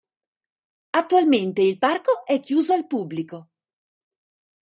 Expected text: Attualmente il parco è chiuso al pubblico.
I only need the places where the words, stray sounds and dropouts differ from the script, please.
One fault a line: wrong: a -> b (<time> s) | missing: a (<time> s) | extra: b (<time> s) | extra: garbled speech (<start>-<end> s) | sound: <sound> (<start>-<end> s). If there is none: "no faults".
no faults